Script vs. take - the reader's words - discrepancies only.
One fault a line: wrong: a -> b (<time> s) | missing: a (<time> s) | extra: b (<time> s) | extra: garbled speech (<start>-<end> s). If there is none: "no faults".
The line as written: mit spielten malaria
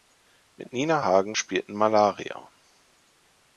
extra: nina hagen (0.7 s)